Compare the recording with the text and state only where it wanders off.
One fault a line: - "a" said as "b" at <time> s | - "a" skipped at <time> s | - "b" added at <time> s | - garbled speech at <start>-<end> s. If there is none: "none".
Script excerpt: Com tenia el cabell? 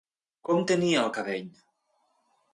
none